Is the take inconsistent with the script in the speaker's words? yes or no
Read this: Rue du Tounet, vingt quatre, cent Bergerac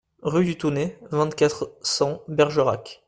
no